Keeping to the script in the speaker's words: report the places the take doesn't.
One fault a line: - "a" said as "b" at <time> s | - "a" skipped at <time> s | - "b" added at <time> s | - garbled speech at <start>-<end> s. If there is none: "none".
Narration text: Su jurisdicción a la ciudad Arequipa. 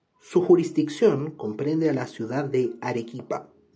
- "comprende" added at 1.3 s
- "de" added at 2.5 s